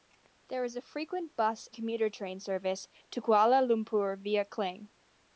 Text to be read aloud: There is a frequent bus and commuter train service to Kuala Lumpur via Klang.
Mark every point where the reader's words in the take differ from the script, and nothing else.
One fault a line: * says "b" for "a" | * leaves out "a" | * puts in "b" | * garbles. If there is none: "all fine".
* leaves out "and"